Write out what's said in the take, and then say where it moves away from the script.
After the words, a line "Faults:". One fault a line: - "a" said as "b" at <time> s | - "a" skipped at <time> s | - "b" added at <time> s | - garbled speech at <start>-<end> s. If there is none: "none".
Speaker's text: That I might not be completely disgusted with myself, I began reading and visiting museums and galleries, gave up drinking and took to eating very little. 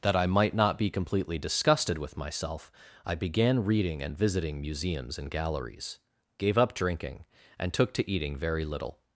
That I might not be completely disgusted with myself, I began reading and visiting museums and galleries, gave up drinking and took to eating very little.
Faults:
none